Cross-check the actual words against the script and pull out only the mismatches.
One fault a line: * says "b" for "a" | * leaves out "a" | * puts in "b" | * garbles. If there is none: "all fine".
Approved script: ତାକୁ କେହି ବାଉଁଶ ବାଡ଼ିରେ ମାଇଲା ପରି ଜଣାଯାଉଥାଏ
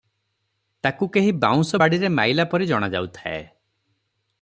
all fine